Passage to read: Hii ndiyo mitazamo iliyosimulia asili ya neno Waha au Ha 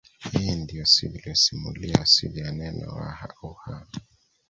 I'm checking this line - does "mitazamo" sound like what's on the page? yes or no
no